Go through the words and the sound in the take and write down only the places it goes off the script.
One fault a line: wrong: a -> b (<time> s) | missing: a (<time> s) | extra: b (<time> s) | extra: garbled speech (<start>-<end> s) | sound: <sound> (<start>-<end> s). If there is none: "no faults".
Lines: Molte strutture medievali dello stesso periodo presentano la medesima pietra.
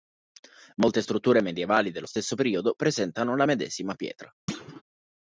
sound: thud (4.5-4.8 s)